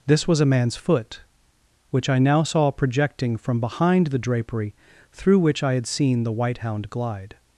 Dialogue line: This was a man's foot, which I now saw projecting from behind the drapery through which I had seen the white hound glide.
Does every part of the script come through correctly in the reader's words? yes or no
yes